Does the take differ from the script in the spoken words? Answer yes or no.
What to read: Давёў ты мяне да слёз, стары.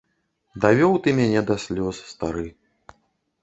no